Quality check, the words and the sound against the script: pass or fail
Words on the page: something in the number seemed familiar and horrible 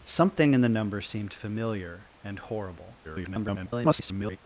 fail